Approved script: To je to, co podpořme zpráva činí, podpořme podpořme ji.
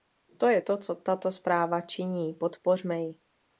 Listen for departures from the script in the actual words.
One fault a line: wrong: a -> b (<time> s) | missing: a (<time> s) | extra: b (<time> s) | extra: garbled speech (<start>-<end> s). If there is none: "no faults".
wrong: podpořme -> tato (1.0 s)
missing: podpořme (3.0 s)